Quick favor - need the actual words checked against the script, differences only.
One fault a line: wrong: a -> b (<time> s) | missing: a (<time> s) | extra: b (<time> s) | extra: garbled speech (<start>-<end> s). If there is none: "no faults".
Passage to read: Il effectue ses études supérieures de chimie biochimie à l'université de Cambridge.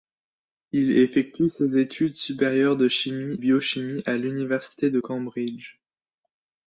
no faults